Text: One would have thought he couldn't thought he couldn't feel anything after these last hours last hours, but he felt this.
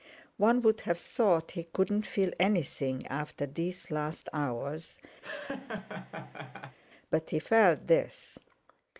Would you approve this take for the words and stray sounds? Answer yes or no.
no